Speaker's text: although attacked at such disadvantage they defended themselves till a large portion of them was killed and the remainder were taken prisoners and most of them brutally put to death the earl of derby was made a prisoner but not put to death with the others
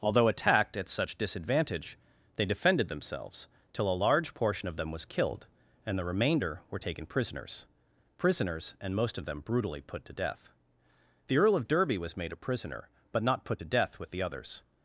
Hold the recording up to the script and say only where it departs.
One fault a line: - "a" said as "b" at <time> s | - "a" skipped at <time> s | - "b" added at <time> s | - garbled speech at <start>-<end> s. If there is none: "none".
- "prisoners" added at 8.2 s